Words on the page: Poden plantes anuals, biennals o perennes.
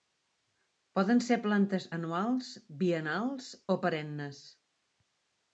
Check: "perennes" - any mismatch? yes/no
no